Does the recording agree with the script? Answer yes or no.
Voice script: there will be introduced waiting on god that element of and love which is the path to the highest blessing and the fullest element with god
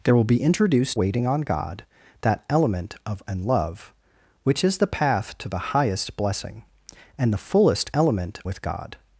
yes